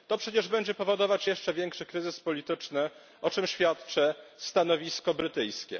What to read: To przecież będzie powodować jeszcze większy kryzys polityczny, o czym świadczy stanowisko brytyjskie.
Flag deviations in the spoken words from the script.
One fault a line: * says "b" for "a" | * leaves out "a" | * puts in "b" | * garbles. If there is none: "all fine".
all fine